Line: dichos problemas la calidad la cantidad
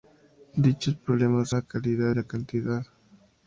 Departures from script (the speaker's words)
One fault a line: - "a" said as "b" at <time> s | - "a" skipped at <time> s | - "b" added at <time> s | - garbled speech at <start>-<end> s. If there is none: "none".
none